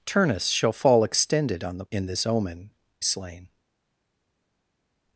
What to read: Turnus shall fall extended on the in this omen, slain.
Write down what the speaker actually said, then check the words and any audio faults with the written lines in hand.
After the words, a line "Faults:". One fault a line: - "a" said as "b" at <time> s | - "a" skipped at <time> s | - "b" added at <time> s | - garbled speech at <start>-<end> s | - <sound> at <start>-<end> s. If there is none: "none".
Turnus shall fall extended on the in this omen, slain.
Faults:
none